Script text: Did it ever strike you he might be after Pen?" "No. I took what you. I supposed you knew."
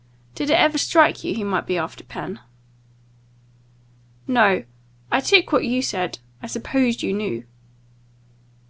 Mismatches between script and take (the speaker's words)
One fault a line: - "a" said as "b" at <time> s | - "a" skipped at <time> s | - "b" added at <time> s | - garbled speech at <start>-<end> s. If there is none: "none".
- "said" added at 5.8 s